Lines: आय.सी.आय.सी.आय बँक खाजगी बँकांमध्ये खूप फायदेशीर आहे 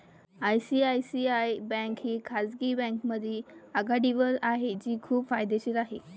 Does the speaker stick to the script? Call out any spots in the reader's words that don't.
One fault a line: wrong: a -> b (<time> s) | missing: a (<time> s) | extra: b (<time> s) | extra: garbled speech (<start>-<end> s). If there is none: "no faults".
extra: ही (2.0 s)
extra: आघाडीवर आहे जी (3.8 s)